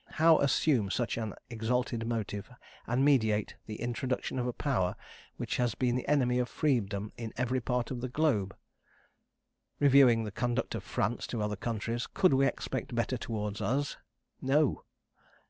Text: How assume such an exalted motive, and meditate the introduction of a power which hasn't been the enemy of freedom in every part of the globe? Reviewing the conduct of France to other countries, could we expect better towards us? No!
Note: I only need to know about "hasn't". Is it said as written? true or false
false